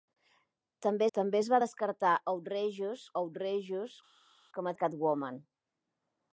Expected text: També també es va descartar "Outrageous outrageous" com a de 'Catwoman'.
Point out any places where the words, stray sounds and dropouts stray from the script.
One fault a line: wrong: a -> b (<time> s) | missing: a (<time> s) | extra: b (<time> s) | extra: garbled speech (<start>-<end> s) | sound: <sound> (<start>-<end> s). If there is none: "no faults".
no faults